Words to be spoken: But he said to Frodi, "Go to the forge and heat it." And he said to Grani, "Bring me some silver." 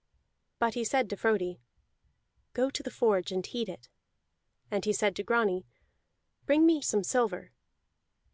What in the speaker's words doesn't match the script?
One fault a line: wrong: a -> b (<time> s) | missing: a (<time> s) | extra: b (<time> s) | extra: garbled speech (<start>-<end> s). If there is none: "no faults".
no faults